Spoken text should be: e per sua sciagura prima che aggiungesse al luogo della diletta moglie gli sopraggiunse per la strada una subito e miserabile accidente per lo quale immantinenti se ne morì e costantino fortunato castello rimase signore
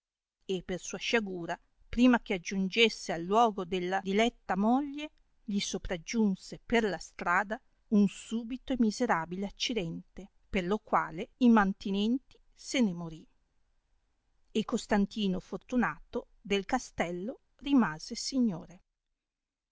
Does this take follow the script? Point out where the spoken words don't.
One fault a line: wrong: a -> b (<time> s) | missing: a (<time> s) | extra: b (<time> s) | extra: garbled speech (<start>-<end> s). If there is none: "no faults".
wrong: una -> un (7.9 s)
extra: del (16.4 s)